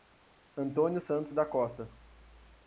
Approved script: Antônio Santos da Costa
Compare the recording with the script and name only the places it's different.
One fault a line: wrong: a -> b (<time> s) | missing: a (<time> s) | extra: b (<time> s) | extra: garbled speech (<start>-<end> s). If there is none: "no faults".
no faults